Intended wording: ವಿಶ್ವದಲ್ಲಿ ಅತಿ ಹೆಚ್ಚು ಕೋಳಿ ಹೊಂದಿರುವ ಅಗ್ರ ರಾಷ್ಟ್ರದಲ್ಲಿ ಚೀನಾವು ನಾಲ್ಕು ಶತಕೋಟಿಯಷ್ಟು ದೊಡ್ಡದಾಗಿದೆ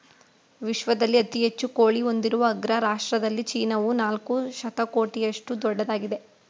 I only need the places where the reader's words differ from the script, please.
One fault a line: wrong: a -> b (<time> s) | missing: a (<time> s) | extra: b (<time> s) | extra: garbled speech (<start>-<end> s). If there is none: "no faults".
no faults